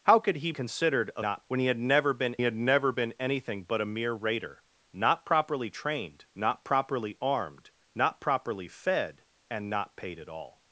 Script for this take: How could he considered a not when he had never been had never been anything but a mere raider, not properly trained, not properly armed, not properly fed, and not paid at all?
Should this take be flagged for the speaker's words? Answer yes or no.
no